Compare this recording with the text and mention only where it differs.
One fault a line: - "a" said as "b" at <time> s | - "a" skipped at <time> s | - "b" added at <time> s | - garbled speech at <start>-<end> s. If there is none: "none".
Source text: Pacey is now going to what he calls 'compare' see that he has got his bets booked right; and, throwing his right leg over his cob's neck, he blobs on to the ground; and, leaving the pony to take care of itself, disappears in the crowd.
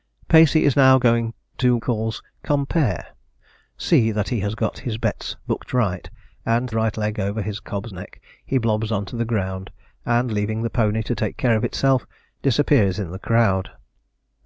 - "what he" skipped at 1.8 s
- "throwing his" skipped at 6.7 s